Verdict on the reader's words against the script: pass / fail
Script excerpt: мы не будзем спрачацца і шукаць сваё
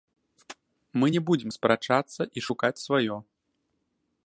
pass